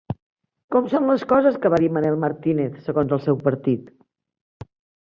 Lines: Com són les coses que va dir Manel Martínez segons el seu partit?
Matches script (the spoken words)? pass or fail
pass